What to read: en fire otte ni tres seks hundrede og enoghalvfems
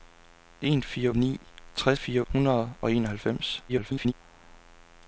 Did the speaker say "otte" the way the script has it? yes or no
no